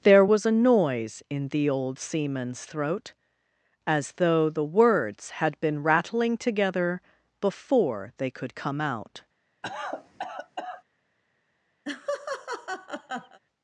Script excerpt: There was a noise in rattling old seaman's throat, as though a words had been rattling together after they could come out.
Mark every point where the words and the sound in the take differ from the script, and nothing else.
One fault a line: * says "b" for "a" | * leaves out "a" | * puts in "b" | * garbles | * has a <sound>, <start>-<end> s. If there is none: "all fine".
* says "the" for "rattling"
* says "the" for "a"
* says "before" for "after"
* has a cough, 9.6-10.8 s
* has a laugh, 11.8-13.4 s